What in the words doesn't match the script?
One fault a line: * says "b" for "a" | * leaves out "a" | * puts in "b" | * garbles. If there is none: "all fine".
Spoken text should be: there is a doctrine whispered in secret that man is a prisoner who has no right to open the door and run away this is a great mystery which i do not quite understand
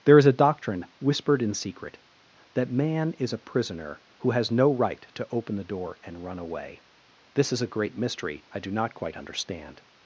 * leaves out "which"